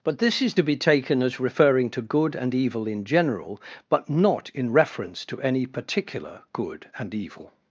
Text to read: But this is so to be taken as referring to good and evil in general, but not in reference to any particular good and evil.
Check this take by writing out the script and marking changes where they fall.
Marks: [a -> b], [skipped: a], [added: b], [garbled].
But this is [skipped: so] to be taken as referring to good and evil in general, but not in reference to any particular good and evil.